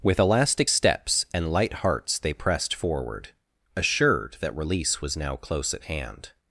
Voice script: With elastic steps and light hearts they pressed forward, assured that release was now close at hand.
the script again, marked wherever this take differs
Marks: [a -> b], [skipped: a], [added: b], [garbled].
With elastic steps and light hearts they pressed forward, assured that release was now close at hand.